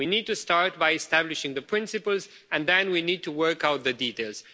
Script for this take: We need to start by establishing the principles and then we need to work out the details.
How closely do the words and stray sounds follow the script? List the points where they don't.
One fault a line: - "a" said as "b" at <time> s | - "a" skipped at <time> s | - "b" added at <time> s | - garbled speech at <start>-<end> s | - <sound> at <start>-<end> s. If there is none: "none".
none